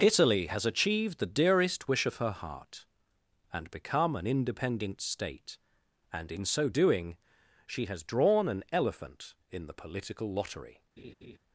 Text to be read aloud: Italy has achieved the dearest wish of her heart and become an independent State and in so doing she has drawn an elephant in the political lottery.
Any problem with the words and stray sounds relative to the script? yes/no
yes